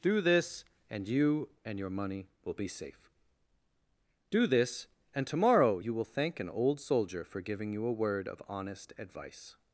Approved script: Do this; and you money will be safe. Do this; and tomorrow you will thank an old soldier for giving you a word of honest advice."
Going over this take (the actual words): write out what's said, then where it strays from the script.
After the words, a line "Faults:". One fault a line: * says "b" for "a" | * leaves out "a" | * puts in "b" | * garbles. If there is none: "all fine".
Do this; and you and your money will be safe. Do this; and tomorrow you will thank an old soldier for giving you a word of honest advice."
Faults:
* puts in "and your"